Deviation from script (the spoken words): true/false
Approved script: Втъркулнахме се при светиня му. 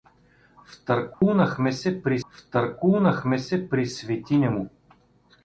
true